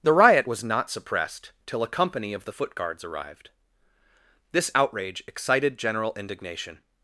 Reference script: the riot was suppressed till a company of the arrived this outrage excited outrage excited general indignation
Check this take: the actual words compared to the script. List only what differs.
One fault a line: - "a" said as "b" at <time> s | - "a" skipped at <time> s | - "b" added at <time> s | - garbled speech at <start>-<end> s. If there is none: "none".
- "not" added at 0.6 s
- "foot guards" added at 2.5 s
- "outrage excited" skipped at 5.8 s